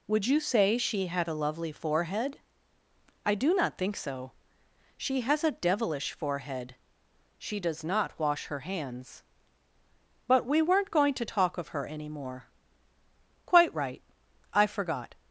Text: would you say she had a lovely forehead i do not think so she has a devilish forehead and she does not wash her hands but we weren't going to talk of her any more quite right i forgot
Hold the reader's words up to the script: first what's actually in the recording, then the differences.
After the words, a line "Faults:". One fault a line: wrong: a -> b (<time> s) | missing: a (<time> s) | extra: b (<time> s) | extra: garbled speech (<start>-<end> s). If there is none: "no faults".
would you say she had a lovely forehead i do not think so she has a devilish forehead she does not wash her hands but we weren't going to talk of her any more quite right i forgot
Faults:
missing: and (6.8 s)